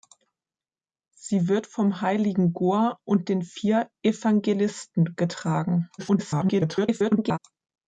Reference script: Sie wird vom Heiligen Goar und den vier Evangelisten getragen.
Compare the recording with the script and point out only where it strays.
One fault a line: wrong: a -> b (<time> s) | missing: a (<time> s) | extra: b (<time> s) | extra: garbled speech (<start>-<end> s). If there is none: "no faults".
extra: garbled speech (6.0-7.4 s)